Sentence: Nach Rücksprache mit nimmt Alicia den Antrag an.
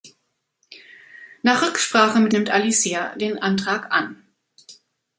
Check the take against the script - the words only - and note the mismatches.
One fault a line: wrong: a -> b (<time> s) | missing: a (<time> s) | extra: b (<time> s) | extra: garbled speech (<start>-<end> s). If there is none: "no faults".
no faults